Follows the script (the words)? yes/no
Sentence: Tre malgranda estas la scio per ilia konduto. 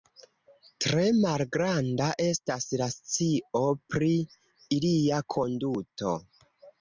no